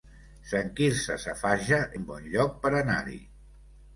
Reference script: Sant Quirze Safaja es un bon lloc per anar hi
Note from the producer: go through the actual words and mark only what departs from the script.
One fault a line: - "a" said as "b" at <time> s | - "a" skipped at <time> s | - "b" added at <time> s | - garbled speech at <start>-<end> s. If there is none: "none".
- "es" skipped at 1.8 s